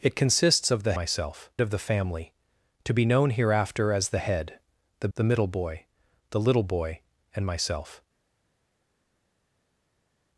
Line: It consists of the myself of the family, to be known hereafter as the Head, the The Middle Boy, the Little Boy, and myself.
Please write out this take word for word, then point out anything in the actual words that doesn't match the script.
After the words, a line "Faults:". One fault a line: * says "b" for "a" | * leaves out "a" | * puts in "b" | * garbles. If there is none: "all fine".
It consists of the myself of the family, to be known hereafter as the Head, the The Middle Boy, the Little Boy, and myself.
Faults:
all fine